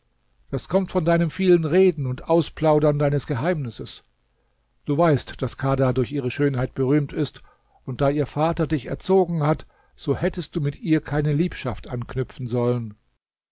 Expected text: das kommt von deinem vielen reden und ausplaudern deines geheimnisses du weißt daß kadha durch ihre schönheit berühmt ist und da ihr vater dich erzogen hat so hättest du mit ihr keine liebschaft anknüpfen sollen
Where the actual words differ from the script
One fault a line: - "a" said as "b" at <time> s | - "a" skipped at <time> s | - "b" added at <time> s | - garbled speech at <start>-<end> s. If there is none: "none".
none